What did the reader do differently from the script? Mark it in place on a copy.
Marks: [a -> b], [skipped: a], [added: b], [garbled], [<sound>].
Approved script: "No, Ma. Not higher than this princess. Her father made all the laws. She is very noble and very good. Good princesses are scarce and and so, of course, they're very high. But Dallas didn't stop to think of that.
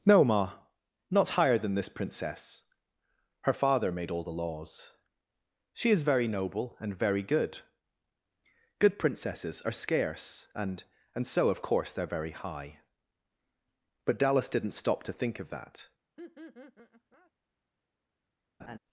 "No, Ma. Not higher than this princess. Her father made all the laws. She is very noble and very good. Good princesses are scarce and and so, of course, they're very high. But Dallas didn't stop to think of that. [laugh] [laugh]